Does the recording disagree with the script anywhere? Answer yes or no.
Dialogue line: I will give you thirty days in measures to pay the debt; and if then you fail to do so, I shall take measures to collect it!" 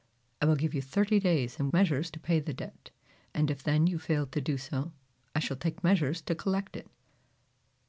no